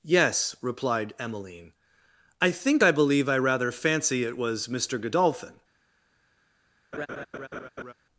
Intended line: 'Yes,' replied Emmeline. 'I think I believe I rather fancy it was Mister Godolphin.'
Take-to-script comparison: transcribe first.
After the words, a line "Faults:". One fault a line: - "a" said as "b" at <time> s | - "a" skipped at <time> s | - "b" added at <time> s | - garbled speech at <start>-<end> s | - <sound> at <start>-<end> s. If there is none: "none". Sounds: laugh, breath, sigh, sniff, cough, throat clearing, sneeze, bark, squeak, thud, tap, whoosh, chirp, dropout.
'Yes,' replied Emmeline. 'I think I believe I rather fancy it was Mister Godolphin.'
Faults:
- laugh at 6.9-7.9 s